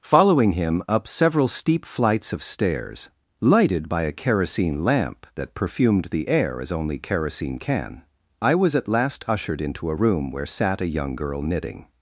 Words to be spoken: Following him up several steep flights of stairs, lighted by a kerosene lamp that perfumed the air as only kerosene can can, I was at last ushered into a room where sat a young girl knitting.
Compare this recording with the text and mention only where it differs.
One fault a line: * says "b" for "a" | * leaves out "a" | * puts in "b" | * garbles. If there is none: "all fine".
* leaves out "can"